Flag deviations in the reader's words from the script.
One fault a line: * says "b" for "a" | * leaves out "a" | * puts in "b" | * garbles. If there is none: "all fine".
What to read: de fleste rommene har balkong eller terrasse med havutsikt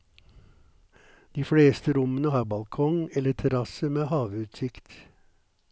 all fine